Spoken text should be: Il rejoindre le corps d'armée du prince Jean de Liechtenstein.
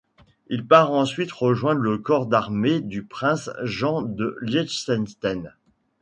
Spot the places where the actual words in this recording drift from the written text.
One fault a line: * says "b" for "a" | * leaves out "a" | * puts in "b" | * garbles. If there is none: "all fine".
* puts in "part ensuite"